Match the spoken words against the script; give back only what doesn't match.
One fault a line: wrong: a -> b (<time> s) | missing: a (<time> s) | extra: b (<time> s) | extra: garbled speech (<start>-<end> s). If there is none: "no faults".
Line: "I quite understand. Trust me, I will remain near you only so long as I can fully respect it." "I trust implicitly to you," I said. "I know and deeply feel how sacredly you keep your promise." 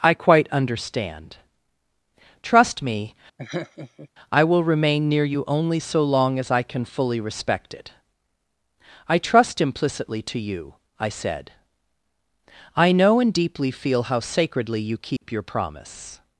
no faults